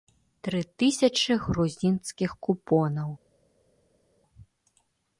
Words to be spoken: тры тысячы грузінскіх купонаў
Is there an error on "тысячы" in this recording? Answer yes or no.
no